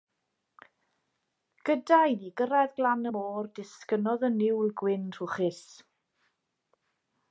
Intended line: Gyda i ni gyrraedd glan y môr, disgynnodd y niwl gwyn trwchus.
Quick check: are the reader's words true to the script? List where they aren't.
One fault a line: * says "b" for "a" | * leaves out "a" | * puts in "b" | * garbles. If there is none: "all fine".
all fine